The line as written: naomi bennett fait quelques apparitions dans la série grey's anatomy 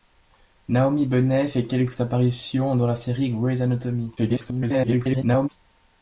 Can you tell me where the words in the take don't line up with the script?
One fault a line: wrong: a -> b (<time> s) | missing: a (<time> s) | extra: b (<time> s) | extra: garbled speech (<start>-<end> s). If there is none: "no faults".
extra: garbled speech (4.2-5.5 s)